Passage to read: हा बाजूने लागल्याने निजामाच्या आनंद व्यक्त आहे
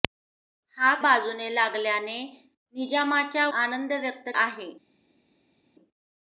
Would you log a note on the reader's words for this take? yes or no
no